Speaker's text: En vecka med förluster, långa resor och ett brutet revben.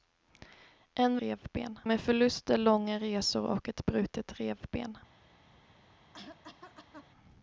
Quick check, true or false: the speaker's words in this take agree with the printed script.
false